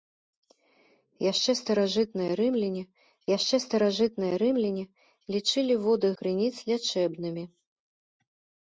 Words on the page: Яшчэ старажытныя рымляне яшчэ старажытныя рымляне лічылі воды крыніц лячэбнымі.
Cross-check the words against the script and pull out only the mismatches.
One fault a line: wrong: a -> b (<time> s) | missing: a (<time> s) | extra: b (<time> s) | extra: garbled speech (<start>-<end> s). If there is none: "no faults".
no faults